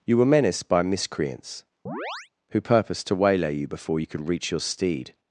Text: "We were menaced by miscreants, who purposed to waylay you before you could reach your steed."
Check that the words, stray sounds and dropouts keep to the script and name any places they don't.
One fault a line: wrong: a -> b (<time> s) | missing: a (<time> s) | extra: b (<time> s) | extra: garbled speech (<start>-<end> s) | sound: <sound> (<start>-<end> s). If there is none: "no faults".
wrong: We -> You (0.0 s)
sound: chirp (1.9-2.3 s)